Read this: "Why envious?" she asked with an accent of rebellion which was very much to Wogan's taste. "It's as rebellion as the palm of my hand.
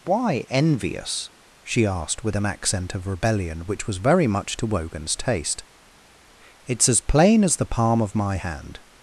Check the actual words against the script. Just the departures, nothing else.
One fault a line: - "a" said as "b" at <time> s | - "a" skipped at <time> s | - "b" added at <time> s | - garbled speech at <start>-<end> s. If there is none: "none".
- "rebellion" said as "plain" at 7.0 s